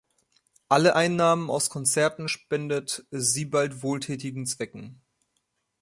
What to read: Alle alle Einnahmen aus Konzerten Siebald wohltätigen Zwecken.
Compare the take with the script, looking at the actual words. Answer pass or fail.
fail